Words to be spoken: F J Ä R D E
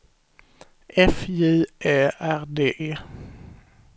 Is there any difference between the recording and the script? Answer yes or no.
no